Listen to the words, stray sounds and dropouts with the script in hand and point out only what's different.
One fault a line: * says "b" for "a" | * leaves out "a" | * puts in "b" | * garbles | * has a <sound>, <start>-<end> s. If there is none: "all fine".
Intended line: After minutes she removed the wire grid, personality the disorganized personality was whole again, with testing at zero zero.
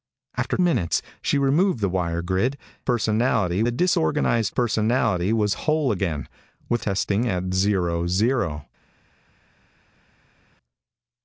all fine